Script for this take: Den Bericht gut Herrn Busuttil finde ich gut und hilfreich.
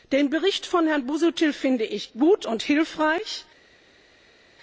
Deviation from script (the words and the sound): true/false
true